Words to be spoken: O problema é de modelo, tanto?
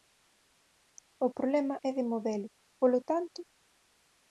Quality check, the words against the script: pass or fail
fail